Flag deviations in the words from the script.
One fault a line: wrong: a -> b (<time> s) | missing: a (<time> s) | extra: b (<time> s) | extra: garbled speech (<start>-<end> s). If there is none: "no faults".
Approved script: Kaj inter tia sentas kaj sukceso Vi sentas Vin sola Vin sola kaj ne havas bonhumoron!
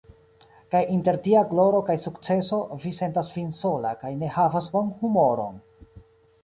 wrong: sentas -> gloro (1.5 s)
missing: Vin sola (3.9 s)